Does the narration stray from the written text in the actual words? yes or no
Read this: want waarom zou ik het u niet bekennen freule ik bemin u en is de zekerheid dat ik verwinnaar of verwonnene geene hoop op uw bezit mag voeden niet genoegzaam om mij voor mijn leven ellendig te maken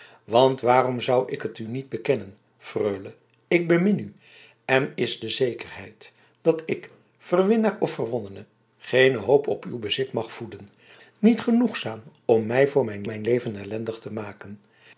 yes